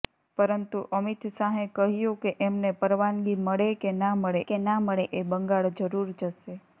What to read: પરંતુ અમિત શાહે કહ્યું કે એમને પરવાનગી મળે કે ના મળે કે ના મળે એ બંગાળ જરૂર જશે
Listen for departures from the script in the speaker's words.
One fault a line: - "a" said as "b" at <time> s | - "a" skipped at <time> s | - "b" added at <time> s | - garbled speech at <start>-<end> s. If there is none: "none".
none